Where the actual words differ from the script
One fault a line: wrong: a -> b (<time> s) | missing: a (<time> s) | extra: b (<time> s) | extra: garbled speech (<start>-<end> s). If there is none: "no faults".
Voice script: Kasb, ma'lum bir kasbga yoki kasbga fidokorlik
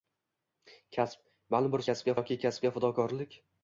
no faults